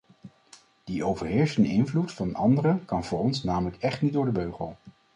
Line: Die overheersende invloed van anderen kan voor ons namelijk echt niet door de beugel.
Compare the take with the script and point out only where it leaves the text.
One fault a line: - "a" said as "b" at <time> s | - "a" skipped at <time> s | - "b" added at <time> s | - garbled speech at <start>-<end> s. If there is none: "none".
none